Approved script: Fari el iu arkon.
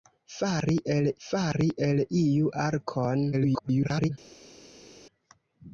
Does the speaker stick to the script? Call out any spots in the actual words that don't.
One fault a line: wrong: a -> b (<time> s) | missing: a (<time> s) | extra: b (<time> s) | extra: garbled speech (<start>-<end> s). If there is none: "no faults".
extra: fari el (1.3 s)
extra: garbled speech (3.3-4.1 s)